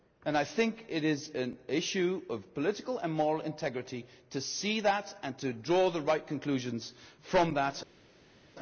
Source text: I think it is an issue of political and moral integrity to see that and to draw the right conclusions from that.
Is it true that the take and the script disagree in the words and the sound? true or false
false